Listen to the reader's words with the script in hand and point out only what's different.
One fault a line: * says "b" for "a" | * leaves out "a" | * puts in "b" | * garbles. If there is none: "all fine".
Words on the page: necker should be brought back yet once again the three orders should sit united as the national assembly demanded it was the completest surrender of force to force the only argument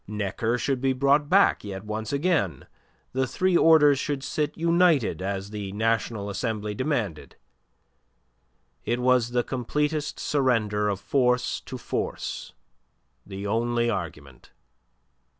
all fine